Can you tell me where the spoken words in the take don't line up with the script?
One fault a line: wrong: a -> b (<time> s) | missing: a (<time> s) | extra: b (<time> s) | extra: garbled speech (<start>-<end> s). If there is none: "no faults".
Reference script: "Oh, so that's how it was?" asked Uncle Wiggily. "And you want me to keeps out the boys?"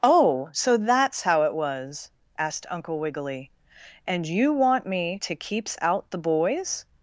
no faults